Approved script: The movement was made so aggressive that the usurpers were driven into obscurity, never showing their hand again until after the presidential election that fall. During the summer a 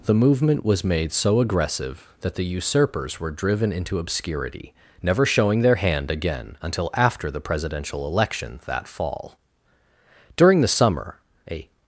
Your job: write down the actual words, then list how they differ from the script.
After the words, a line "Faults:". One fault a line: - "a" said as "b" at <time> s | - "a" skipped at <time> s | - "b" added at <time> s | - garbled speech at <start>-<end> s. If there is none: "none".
The movement was made so aggressive that the usurpers were driven into obscurity, never showing their hand again until after the presidential election that fall. During the summer a
Faults:
none